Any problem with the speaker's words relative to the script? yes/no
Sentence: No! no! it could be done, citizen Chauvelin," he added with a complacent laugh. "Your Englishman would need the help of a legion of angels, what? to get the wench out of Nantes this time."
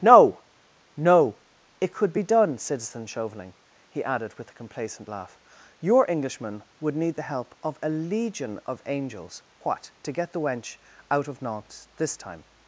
no